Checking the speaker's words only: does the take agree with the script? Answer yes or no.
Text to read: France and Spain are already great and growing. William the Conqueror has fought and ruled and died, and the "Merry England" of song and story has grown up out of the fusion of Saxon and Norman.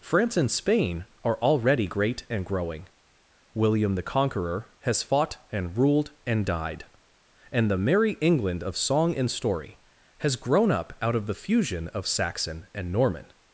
yes